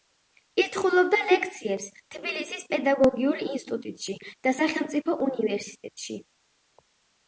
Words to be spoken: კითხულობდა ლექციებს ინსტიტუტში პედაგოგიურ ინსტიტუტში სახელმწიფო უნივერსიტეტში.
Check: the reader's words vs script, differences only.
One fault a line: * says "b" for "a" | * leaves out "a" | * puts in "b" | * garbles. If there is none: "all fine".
* says "თბილისის" for "ინსტიტუტში"
* puts in "და"